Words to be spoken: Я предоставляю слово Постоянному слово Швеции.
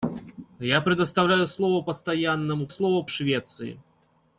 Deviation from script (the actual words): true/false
false